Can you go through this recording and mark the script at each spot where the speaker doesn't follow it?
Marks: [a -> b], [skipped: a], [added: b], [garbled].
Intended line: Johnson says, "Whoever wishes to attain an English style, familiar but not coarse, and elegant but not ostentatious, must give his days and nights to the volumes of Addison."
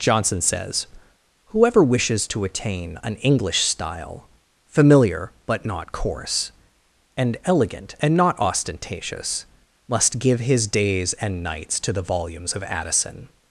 Johnson says, "Whoever wishes to attain an English style, familiar but not coarse, and elegant [but -> and] not ostentatious, must give his days and nights to the volumes of Addison."